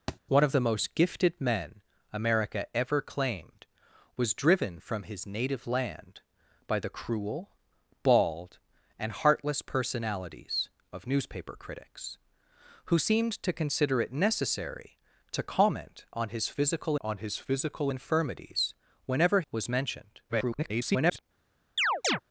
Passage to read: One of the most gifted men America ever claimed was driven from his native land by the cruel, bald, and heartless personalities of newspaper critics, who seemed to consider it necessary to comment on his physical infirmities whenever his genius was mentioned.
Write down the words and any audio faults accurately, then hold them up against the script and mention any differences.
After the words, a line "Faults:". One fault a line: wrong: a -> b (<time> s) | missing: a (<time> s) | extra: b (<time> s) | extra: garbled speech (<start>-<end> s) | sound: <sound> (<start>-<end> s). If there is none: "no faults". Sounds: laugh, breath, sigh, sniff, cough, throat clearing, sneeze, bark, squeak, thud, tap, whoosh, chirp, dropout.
One of the most gifted men America ever claimed was driven from his native land by the cruel, bald, and heartless personalities of newspaper critics, who seemed to consider it necessary to comment on his physical on his physical infirmities whenever was mentioned. [garbled]
Faults:
sound: thud (0.1-0.2 s)
extra: on his physical (17.0 s)
missing: his genius (19.4 s)
extra: garbled speech (20.3-21.2 s)
sound: chirp (21.8-22.2 s)